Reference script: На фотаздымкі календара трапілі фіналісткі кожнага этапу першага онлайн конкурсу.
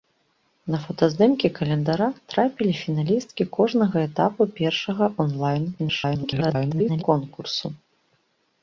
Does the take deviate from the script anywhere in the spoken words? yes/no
yes